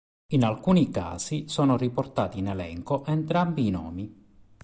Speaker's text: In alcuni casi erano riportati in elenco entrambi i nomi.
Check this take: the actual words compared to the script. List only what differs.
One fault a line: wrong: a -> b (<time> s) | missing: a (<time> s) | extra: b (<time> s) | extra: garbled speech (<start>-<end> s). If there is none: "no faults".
wrong: erano -> sono (1.5 s)